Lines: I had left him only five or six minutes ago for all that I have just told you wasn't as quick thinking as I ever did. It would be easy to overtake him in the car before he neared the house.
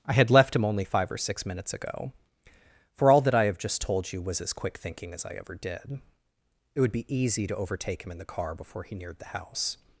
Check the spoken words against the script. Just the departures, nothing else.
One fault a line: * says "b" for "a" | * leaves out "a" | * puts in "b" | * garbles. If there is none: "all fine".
* says "was" for "wasn't"